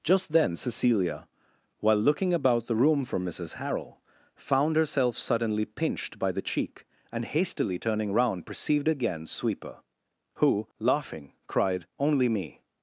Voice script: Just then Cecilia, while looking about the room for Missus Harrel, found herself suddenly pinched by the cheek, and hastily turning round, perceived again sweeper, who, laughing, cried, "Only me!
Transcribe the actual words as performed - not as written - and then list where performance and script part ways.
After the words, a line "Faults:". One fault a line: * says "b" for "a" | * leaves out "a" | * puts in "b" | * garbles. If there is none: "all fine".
Just then Cecilia, while looking about the room for Missus Harrel, found herself suddenly pinched by the cheek, and hastily turning round, perceived again sweeper, who, laughing, cried, "Only me!
Faults:
all fine